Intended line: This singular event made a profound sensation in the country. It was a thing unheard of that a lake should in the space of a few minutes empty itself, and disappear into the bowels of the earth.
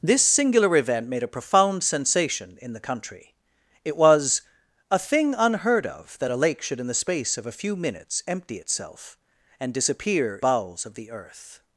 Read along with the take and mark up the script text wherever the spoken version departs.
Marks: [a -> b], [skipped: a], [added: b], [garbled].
This singular event made a profound sensation in the country. It was a thing unheard of that a lake should in the space of a few minutes empty itself, and disappear [skipped: into the] bowels of the earth.